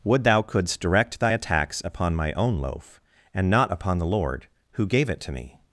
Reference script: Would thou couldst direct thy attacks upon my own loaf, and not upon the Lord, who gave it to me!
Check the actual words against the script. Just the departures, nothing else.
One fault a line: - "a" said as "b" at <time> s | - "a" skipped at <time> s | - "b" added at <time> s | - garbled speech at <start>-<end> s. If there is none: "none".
none